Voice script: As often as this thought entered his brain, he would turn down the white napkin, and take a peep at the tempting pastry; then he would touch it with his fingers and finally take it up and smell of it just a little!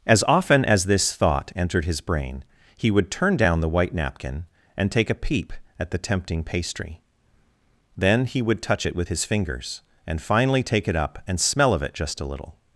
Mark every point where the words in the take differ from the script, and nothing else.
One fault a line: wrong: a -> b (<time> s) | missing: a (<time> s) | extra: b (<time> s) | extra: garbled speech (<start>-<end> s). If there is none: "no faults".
no faults